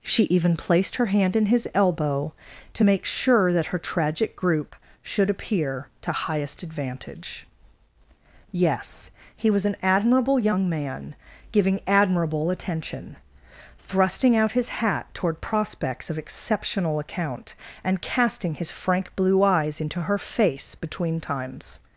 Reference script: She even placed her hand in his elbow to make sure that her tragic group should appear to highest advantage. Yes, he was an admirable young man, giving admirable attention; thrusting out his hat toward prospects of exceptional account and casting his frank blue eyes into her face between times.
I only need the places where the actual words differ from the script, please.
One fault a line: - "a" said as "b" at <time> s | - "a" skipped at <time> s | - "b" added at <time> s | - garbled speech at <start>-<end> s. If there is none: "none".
none